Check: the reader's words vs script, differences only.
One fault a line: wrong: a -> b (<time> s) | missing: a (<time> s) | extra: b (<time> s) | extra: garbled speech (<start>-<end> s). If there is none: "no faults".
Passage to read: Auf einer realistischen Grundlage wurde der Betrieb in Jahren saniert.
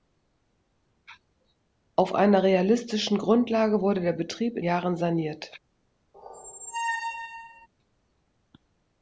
no faults